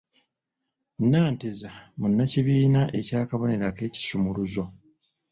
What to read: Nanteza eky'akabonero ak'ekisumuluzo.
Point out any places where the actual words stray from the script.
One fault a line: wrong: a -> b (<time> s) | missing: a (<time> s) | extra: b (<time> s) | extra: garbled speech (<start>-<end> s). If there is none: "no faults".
extra: munnakibiina (2.0 s)